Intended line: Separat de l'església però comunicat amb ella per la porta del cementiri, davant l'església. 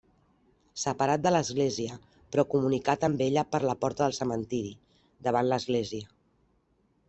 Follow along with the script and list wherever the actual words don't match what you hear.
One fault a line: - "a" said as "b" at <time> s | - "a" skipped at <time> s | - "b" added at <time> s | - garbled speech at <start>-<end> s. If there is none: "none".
none